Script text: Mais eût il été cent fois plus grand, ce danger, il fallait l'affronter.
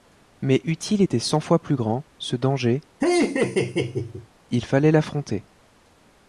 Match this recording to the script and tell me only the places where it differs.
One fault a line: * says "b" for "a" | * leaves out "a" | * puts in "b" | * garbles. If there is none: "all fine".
all fine